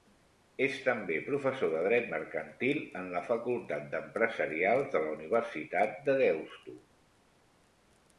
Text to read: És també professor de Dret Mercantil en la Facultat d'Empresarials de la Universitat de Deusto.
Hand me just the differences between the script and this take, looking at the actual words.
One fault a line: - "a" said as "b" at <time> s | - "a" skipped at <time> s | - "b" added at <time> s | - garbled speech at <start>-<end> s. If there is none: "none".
none